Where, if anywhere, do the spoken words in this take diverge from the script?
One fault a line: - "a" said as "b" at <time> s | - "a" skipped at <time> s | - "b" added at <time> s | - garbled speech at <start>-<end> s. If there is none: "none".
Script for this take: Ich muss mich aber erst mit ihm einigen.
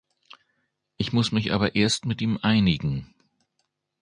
none